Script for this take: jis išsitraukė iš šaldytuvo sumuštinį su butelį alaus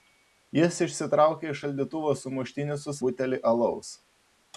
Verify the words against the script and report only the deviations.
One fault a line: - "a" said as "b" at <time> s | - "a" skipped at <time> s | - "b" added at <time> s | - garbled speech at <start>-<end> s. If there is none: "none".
none